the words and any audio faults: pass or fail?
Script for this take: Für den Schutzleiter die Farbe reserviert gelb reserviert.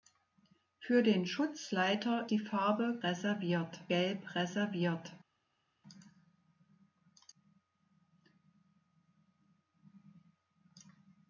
pass